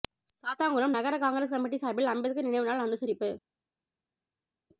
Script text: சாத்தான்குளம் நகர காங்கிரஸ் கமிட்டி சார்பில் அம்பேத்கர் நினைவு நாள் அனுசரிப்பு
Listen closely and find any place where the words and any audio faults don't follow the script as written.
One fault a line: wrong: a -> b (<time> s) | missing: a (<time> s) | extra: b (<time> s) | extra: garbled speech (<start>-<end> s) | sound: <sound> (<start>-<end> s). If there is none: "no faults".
no faults